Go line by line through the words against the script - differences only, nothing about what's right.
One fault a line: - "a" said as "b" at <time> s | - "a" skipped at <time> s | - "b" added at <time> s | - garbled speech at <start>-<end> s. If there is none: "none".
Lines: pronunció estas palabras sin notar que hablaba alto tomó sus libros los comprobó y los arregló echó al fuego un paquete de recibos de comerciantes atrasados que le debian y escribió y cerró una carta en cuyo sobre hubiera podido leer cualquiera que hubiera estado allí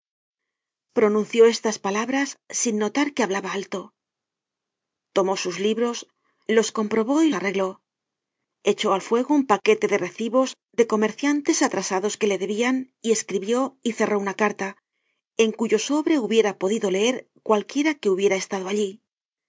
- "los" skipped at 7.3 s